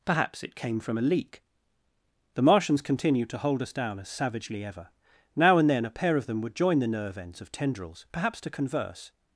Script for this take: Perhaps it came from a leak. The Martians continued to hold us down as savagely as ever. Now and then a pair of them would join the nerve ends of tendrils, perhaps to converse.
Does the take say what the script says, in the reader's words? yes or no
no